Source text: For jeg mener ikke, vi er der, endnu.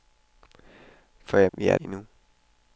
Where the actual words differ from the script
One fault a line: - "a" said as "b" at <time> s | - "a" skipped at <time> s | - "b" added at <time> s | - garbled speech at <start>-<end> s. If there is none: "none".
- "mener ikke" skipped at 1.5 s
- "der" skipped at 1.8 s